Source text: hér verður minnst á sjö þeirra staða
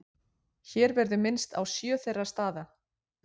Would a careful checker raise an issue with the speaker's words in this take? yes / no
no